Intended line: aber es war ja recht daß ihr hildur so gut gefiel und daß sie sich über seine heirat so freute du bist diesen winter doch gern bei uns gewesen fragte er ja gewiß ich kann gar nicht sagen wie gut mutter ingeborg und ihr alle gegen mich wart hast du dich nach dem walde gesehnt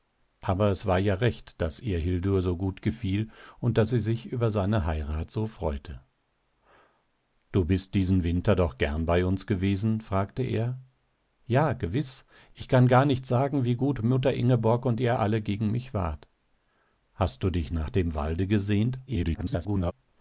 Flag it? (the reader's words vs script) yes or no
yes